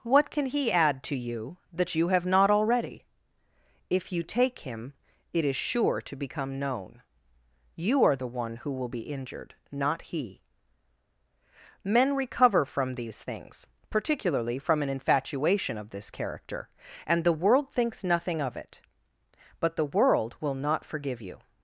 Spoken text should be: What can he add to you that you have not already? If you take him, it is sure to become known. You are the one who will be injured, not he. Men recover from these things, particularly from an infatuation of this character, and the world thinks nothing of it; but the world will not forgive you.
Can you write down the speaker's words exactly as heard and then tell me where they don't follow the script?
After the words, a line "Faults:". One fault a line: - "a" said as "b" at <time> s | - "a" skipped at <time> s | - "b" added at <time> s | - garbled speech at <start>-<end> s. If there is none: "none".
What can he add to you that you have not already? If you take him, it is sure to become known. You are the one who will be injured, not he. Men recover from these things, particularly from an infatuation of this character, and the world thinks nothing of it; but the world will not forgive you.
Faults:
none